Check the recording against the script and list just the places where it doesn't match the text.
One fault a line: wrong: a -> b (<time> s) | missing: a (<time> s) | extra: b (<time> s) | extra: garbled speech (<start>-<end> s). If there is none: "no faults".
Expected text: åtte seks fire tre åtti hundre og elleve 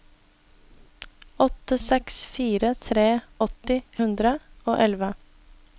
no faults